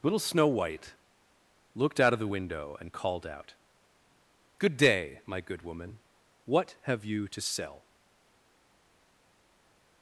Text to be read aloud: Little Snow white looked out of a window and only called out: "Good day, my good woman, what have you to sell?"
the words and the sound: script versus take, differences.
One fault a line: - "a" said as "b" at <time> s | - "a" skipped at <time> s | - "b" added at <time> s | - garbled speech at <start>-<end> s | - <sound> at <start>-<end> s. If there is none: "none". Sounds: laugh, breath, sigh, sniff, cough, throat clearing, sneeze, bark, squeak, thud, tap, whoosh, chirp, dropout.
- "a" said as "the" at 2.2 s
- "only" skipped at 2.9 s